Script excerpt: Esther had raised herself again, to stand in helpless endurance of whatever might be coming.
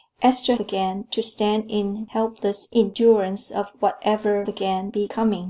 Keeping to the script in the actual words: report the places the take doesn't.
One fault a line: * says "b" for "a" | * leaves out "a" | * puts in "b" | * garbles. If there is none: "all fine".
* leaves out "had raised herself"
* says "again" for "might"